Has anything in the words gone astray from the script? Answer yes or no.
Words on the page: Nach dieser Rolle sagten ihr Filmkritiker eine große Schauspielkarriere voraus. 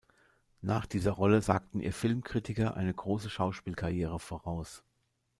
no